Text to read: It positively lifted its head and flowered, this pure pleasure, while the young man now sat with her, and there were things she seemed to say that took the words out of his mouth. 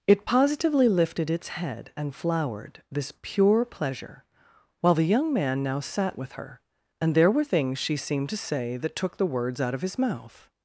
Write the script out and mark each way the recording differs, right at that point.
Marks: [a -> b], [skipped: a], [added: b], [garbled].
It positively lifted its head and flowered, this pure pleasure, while the young man now sat with her, and there were things she seemed to say that took the words out of his mouth.